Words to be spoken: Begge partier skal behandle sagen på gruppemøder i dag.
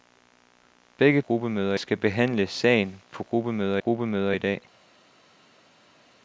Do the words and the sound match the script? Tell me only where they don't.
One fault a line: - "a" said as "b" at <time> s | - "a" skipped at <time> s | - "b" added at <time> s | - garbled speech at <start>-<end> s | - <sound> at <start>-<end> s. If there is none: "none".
- "partier" said as "gruppemøder" at 1.2 s
- "gruppemøder" added at 3.8 s